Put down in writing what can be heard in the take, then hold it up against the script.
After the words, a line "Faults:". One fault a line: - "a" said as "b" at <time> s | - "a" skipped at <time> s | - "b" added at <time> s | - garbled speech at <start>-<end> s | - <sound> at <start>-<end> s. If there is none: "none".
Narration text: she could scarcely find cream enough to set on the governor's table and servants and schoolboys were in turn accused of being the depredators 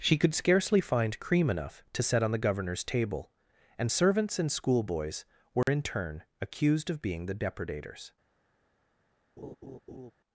she could scarcely find cream enough to set on the governor's table and servants and schoolboys were in turn accused of being the depredators
Faults:
- dropout at 5.6-5.7 s
- laugh at 9.4-10.1 s